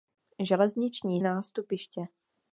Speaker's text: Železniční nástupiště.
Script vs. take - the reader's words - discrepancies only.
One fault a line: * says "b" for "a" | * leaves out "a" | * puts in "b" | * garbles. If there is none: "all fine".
all fine